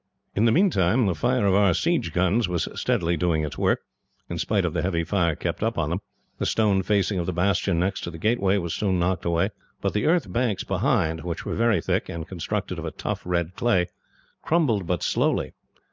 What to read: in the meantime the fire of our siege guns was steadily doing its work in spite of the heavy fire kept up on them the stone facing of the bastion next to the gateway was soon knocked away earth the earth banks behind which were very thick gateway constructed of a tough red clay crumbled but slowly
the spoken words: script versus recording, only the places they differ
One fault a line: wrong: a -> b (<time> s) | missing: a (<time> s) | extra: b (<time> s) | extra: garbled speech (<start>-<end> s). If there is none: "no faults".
wrong: earth -> but (9.8 s)
wrong: gateway -> and (12.1 s)